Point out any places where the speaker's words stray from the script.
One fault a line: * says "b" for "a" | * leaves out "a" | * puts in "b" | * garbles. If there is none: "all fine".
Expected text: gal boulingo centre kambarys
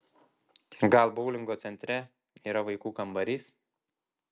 * puts in "yra vaikų"